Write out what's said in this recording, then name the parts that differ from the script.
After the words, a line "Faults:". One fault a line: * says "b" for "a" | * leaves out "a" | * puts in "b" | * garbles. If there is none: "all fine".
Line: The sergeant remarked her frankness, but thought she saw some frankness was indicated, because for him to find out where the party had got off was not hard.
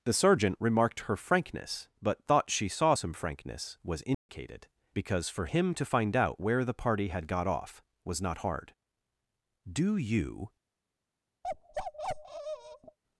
The sergeant remarked her frankness, but thought she saw some frankness was indicated, because for him to find out where the party had got off was not hard. "Do you
Faults:
* puts in "Do you"